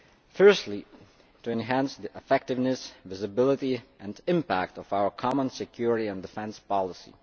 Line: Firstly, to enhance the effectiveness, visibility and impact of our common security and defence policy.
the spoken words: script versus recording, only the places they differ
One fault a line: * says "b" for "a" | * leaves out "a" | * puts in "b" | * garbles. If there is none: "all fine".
all fine